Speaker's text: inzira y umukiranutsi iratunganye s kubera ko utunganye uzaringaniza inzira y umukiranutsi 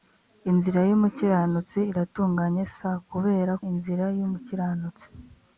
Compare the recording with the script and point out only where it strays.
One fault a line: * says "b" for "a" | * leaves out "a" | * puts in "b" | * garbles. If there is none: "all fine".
* leaves out "ko utunganye uzaringaniza"